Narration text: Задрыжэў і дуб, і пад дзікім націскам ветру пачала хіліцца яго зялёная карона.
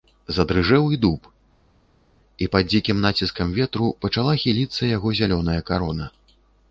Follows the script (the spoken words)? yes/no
yes